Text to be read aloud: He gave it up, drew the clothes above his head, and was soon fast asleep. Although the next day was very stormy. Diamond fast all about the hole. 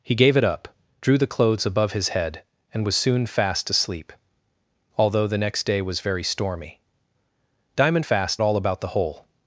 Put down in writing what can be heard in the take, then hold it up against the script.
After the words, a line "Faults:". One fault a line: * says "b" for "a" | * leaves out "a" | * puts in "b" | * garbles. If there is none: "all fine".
He gave it up, drew the clothes above his head, and was soon fast asleep. Although the next day was very stormy. Diamond fast all about the hole.
Faults:
all fine